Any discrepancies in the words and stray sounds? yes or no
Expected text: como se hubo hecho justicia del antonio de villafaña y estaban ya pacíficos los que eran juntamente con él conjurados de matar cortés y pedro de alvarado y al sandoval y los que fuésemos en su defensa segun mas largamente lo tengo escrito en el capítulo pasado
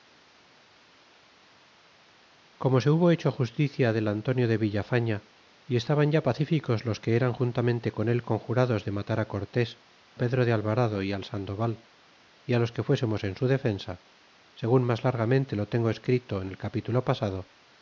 yes